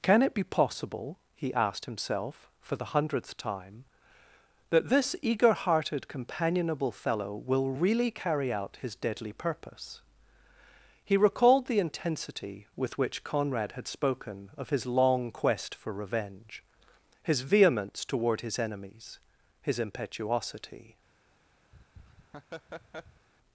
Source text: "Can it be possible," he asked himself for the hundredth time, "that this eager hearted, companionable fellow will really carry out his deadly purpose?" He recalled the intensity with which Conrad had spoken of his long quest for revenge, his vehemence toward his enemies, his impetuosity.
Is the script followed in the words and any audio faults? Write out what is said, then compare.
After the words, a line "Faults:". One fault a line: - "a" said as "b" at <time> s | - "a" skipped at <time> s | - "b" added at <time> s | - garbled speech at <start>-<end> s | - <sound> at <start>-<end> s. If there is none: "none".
"Can it be possible," he asked himself for the hundredth time, "that this eager hearted, companionable fellow will really carry out his deadly purpose?" He recalled the intensity with which Conrad had spoken of his long quest for revenge, his vehemence toward his enemies, his impetuosity.
Faults:
- laugh at 21.7-23.3 s